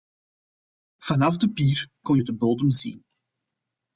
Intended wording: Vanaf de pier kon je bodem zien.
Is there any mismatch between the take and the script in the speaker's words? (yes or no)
yes